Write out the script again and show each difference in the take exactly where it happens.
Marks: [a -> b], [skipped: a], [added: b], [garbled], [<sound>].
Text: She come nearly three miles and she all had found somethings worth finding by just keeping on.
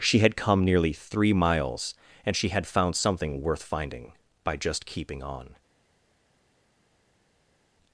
She [added: had] come nearly three miles and she [skipped: all] had found [somethings -> something] worth finding by just keeping on.